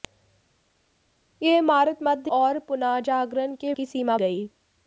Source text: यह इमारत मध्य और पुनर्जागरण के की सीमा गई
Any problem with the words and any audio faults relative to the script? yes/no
no